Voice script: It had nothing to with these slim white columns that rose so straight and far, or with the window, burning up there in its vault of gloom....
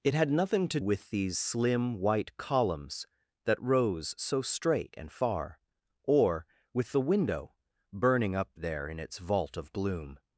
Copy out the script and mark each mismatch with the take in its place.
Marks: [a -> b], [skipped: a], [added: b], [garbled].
It had nothing to with these slim white columns that rose so straight and far, or with the window, burning up there in its vault of gloom....